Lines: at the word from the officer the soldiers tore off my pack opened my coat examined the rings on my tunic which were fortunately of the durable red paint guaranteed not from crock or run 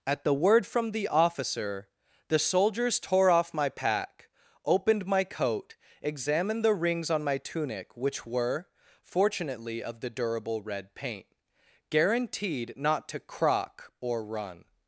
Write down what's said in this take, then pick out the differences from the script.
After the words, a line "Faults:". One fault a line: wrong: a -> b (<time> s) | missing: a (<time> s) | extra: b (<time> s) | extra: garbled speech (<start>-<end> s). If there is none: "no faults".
at the word from the officer the soldiers tore off my pack opened my coat examined the rings on my tunic which were fortunately of the durable red paint guaranteed not to crock or run
Faults:
wrong: from -> to (13.1 s)